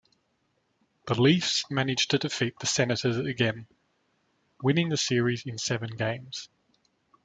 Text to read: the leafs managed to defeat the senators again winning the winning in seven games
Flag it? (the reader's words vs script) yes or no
yes